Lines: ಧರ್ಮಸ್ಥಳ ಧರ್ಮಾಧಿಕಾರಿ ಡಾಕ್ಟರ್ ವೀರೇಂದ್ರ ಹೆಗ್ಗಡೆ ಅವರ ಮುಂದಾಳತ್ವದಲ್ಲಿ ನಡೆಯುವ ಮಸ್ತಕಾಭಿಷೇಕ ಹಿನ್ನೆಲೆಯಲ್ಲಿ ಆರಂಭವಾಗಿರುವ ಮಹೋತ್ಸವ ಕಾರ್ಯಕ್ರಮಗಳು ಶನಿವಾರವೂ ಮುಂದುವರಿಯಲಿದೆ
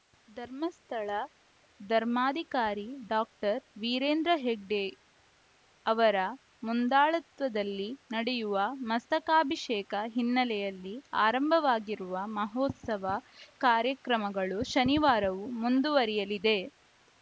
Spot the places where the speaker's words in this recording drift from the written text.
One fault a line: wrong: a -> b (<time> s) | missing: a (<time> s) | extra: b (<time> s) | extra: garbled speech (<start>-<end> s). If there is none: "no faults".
no faults